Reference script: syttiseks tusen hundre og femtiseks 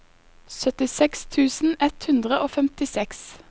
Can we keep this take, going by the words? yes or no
no